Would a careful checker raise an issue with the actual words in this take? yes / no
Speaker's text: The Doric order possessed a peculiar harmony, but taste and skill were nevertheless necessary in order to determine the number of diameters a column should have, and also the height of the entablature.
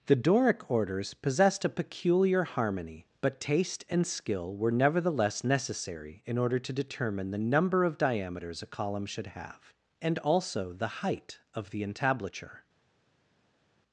yes